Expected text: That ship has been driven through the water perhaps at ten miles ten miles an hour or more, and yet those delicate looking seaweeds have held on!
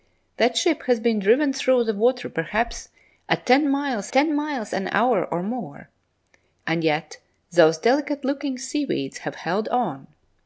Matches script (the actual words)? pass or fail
pass